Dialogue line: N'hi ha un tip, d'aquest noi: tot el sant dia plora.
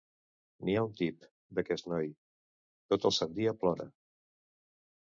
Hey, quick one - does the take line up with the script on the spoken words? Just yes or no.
yes